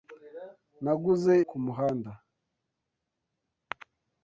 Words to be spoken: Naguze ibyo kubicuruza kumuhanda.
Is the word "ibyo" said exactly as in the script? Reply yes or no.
no